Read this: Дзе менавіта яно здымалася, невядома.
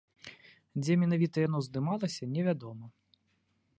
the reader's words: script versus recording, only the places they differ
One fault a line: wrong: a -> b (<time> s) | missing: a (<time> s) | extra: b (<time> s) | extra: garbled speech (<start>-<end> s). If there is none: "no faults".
no faults